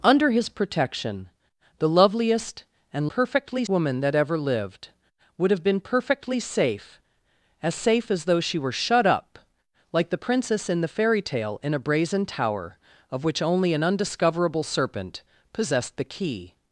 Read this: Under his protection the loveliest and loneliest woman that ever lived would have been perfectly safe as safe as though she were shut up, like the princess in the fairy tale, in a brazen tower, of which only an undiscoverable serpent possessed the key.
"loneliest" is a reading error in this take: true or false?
true